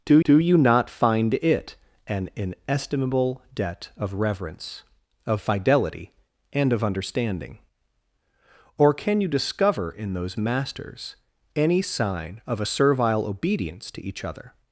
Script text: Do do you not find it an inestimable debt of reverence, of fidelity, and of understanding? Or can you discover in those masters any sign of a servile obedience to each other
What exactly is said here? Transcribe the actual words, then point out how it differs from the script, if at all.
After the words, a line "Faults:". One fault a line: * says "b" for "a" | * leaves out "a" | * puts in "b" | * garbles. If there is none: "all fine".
Do do you not find it an inestimable debt of reverence, of fidelity, and of understanding? Or can you discover in those masters any sign of a servile obedience to each other
Faults:
all fine